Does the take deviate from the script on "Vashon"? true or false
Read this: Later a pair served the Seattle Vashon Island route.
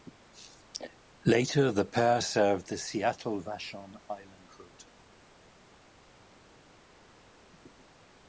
false